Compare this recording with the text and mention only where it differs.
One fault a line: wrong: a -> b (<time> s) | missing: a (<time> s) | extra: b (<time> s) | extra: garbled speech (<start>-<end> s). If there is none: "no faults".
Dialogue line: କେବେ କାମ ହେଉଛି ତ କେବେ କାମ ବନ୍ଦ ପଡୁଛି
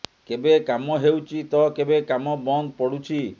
no faults